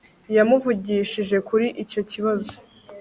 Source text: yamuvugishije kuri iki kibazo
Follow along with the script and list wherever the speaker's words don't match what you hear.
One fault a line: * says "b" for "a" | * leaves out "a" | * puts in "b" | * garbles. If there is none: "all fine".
* says "icyo" for "iki"